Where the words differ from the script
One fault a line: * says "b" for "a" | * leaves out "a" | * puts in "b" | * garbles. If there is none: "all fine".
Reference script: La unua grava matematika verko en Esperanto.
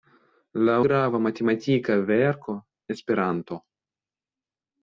* leaves out "unua"
* leaves out "en"